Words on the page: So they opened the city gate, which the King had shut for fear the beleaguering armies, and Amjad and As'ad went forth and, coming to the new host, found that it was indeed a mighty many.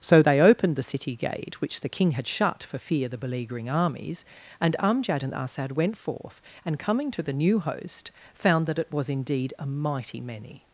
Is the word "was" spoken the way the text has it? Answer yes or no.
yes